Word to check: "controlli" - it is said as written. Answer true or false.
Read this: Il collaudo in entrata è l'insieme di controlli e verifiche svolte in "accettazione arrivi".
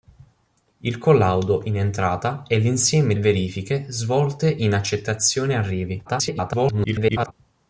false